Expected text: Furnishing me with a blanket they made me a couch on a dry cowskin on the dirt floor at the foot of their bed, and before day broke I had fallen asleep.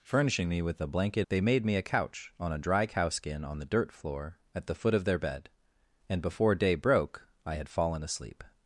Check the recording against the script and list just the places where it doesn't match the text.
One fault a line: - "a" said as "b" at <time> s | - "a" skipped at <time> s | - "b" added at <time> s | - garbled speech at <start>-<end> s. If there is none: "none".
none